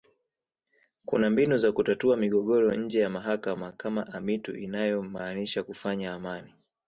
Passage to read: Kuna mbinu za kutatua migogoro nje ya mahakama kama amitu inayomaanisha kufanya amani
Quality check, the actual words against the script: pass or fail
pass